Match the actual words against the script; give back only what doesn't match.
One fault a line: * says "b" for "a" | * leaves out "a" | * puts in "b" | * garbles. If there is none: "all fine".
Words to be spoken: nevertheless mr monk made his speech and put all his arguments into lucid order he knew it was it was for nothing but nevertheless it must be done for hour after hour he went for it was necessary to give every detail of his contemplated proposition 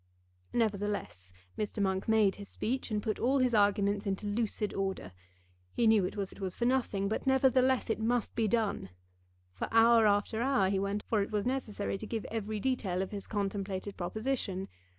all fine